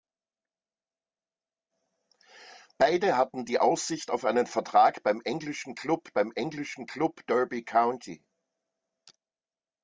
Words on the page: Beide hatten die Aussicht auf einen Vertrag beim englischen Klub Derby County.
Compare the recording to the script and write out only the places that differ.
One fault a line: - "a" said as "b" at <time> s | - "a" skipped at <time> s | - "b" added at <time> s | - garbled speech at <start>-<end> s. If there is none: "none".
- "beim englischen Klub" added at 6.1 s